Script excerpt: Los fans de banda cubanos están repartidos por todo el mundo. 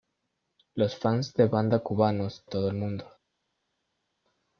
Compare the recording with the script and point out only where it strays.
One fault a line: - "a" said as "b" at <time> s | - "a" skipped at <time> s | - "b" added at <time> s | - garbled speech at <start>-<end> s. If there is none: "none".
- "están repartidos por" skipped at 2.4 s